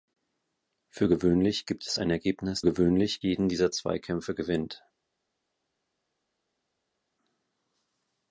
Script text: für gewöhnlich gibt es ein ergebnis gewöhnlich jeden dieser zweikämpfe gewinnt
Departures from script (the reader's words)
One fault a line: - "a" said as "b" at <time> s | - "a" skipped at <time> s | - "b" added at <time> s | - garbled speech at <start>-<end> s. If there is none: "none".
none